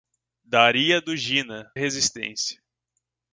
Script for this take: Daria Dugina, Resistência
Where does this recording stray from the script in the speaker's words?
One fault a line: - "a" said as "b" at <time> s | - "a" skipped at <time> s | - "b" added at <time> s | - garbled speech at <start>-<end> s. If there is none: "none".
none